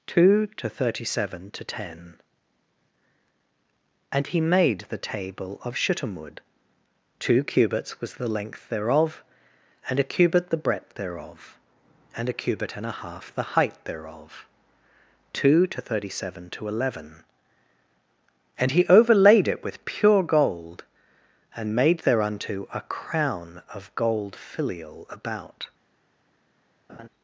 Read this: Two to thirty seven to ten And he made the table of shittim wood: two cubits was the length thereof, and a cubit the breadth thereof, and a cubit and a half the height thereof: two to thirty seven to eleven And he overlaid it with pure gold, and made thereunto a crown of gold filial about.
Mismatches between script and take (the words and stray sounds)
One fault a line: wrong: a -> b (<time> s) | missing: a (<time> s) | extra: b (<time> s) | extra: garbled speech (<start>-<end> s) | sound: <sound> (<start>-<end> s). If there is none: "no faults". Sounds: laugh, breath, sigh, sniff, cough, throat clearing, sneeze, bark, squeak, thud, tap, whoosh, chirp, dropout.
sound: laugh (26.9-27.1 s)